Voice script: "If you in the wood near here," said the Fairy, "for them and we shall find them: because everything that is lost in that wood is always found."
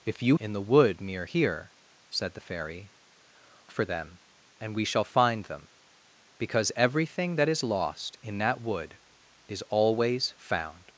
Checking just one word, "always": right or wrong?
right